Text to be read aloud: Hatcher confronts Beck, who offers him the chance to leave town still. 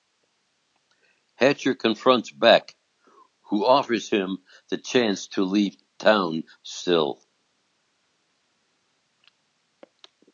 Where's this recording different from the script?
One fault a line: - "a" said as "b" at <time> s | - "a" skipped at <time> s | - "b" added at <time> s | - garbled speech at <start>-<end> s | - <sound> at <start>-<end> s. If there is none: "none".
none